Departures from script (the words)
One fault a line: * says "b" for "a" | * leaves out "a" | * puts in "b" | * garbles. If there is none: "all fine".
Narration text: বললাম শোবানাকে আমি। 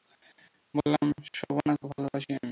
* puts in "ভালোবাসি"